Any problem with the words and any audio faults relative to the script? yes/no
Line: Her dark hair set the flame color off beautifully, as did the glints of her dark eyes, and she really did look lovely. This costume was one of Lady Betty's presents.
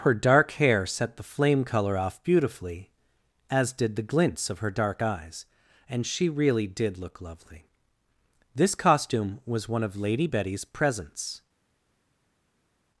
no